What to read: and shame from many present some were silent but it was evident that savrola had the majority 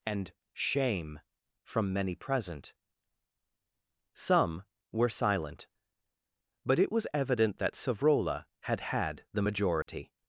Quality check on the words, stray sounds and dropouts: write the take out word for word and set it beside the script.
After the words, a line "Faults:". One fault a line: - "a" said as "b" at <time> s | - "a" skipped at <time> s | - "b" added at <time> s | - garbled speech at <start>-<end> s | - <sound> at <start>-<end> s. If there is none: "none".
and shame from many present some were silent but it was evident that savrola had had the majority
Faults:
- "had" added at 8.9 s
- dropout at 9.8-9.9 s